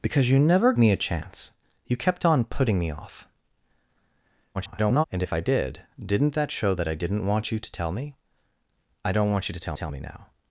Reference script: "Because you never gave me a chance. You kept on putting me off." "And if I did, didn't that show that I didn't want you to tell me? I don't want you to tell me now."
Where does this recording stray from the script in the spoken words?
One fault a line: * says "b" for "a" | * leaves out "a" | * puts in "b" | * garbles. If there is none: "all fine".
* leaves out "gave"
* garbles
* puts in "tell"